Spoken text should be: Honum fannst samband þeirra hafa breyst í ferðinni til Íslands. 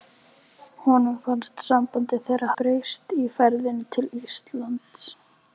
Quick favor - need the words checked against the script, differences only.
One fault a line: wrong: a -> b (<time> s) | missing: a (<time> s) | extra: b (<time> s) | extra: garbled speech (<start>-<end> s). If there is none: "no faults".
missing: hafa (2.5 s)